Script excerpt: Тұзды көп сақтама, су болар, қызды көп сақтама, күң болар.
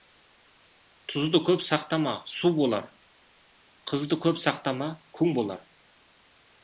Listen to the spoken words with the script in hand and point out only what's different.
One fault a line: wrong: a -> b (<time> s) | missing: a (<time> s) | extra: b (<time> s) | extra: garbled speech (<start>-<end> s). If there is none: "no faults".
no faults